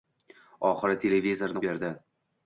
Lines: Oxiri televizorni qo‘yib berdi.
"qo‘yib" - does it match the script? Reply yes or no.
no